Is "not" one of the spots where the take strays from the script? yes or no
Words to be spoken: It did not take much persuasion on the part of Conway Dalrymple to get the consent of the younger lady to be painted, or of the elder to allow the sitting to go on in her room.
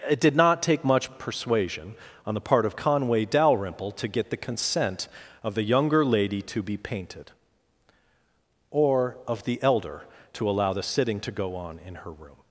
no